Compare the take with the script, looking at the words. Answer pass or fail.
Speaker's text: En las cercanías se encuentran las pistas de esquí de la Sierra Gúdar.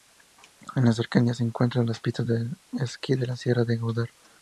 fail